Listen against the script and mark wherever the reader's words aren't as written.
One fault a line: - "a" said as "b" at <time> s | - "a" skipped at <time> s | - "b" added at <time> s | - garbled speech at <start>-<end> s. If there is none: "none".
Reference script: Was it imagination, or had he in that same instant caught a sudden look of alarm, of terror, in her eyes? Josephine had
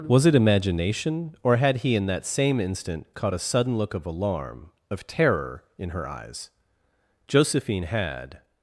none